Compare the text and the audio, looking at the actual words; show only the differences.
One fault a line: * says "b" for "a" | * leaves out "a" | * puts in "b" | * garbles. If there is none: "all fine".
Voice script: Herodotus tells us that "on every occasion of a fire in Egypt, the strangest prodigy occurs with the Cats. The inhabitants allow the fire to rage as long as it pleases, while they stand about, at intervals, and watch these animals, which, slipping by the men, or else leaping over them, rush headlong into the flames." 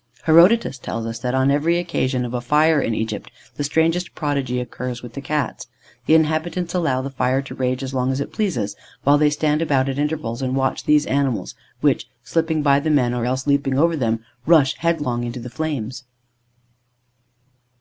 all fine